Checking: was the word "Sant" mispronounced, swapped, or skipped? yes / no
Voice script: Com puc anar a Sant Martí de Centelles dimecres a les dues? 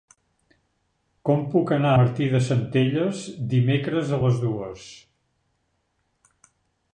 yes